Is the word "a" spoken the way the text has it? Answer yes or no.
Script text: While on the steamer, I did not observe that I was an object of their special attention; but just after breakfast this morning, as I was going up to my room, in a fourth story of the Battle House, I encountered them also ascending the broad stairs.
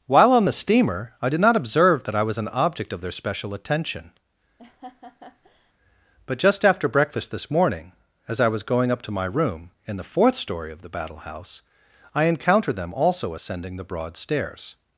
no